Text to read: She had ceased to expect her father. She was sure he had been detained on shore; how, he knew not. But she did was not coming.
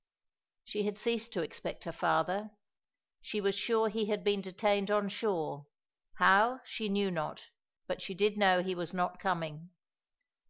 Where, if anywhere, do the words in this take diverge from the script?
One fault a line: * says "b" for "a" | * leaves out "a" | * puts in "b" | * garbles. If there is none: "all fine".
* says "she" for "he"
* puts in "know he"